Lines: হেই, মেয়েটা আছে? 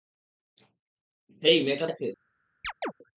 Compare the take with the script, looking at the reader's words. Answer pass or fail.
pass